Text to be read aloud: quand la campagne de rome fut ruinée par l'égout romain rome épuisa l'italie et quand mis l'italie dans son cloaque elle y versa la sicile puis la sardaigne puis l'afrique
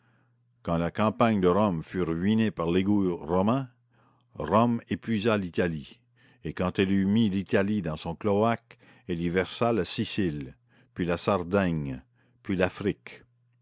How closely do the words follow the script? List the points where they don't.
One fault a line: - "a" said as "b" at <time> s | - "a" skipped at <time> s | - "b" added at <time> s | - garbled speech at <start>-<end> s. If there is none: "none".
- "elle eut" added at 6.8 s